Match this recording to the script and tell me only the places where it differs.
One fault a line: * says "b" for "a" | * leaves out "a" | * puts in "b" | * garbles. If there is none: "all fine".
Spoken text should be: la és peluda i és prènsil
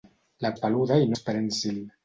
all fine